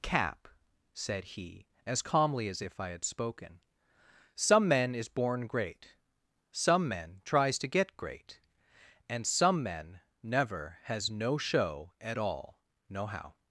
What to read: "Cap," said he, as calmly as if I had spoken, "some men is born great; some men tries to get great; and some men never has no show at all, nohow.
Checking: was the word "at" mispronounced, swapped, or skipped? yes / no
no